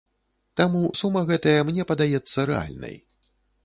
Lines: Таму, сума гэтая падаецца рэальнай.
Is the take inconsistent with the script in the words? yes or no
yes